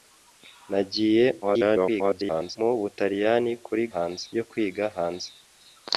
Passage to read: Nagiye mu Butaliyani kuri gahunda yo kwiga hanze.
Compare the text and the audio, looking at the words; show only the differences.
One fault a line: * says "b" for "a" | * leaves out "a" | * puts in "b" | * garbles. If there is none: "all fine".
* garbles
* says "hanze" for "gahunda"